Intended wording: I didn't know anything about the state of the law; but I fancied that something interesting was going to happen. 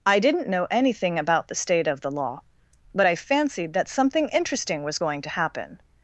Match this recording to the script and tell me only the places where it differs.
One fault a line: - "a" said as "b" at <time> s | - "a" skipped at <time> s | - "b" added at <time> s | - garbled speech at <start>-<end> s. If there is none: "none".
none